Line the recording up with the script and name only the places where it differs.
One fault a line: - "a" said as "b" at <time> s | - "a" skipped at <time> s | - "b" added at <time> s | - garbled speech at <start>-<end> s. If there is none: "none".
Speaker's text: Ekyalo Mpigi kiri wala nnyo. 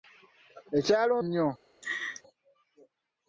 - "Mpigi kiri wala" skipped at 1.1 s